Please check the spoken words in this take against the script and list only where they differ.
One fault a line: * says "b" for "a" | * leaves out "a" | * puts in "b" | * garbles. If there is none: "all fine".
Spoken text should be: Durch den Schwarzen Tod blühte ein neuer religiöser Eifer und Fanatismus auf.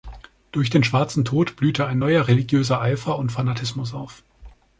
all fine